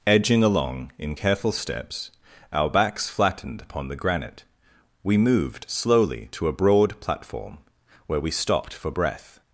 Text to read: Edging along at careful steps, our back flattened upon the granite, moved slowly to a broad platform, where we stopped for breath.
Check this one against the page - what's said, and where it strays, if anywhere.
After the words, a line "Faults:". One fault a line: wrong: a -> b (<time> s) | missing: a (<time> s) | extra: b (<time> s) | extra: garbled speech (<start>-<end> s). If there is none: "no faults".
Edging along in careful steps, our backs flattened upon the granite, we moved slowly to a broad platform, where we stopped for breath.
Faults:
wrong: at -> in (1.0 s)
wrong: back -> backs (2.7 s)
extra: we (5.0 s)